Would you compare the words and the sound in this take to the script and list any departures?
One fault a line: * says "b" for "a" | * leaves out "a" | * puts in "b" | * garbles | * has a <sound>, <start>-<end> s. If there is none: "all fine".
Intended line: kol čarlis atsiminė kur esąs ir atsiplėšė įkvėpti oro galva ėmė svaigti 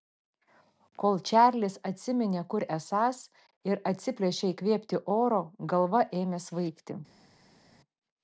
all fine